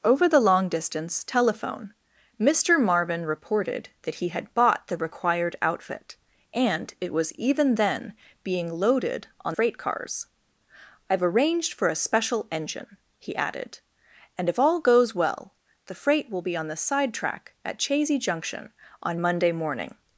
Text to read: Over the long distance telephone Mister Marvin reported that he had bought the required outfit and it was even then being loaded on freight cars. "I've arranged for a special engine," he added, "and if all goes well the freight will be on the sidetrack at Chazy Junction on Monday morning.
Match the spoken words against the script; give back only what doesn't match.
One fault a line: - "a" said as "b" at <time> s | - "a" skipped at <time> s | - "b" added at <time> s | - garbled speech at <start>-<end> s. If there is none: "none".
none